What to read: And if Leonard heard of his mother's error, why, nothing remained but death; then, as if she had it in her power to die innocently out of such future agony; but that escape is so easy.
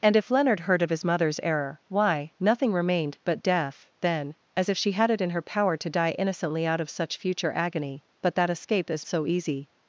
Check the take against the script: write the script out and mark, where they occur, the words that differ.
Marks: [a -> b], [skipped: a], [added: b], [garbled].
And if Leonard heard of his mother's error, why, nothing remained but death; then, as if she had it in her power to die innocently out of such future agony; but that escape is so easy.